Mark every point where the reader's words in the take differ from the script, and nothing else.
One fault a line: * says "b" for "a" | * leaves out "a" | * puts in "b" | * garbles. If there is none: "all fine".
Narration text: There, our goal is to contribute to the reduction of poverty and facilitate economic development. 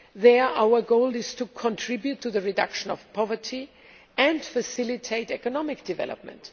all fine